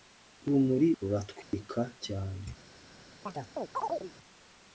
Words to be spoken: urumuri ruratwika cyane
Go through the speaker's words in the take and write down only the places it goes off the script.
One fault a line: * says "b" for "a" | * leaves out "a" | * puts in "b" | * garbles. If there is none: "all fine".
all fine